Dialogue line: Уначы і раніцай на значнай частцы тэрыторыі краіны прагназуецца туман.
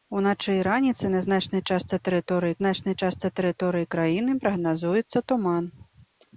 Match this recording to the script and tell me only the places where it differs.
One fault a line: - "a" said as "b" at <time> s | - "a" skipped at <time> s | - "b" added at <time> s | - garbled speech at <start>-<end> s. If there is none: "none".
- "значнай частцы тэрыторыі" added at 2.6 s